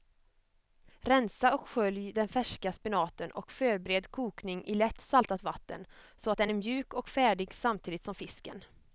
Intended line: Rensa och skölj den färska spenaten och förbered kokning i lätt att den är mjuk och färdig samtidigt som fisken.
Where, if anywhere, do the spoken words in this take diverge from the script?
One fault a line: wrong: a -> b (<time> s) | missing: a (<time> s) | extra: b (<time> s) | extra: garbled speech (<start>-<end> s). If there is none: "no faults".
extra: saltat vatten så (5.0 s)